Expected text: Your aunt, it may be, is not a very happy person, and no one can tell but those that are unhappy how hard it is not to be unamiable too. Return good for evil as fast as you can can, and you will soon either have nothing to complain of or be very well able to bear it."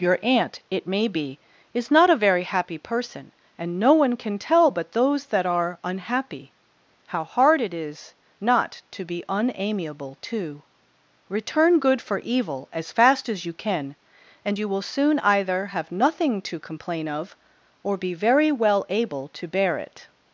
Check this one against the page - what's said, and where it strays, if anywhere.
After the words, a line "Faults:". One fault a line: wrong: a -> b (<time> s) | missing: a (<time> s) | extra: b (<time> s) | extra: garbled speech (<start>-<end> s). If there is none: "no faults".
Your aunt, it may be, is not a very happy person, and no one can tell but those that are unhappy how hard it is not to be unamiable too. Return good for evil as fast as you can, and you will soon either have nothing to complain of or be very well able to bear it."
Faults:
missing: can (13.9 s)